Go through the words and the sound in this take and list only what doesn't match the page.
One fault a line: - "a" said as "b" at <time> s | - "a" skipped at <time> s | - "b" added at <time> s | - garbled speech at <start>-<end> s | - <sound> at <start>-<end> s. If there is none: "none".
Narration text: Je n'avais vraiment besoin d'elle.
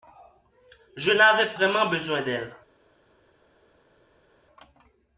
none